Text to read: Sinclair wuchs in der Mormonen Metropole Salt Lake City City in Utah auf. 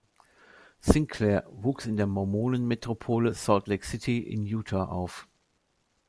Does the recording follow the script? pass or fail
fail